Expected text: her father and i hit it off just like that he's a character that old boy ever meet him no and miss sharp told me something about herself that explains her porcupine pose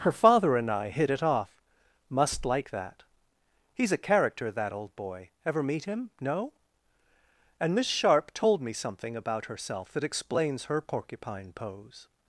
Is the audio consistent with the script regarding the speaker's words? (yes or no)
no